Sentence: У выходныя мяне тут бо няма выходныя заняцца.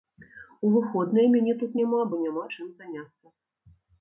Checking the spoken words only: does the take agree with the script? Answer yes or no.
no